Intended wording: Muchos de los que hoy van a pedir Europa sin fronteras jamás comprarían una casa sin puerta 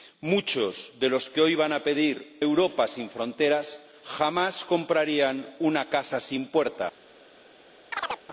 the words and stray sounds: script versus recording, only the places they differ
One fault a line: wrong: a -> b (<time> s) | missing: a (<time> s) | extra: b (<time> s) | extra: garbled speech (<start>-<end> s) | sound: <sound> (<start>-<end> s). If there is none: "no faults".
sound: chirp (7.9-8.2 s)